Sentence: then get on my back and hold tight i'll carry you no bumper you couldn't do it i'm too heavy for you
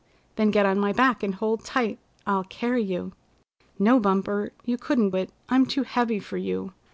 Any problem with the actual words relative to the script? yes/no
yes